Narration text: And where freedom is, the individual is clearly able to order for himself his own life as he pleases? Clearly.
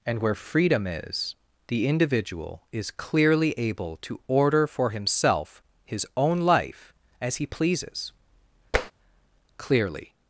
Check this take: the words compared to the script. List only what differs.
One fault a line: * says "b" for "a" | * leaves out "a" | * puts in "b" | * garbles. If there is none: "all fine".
all fine